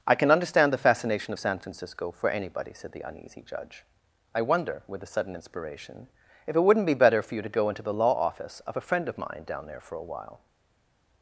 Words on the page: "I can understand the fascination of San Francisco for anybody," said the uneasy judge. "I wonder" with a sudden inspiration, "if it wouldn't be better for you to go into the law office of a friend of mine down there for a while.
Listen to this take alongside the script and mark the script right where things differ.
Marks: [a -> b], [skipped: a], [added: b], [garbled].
"I can understand the fascination of San Francisco for anybody," said the uneasy judge. "I wonder" with a sudden inspiration, "if it wouldn't be better for you to go into the law office of a friend of mine down there for a while.